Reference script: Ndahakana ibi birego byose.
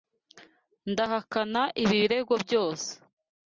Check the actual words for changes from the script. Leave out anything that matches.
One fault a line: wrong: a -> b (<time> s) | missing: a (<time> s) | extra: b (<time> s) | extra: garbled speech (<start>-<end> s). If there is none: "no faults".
no faults